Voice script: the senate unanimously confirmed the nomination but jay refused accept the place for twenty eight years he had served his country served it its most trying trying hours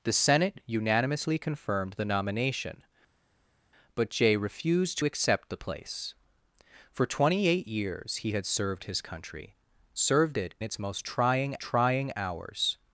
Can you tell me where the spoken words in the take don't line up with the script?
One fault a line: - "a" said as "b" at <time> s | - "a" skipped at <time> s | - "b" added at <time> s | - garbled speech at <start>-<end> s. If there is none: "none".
none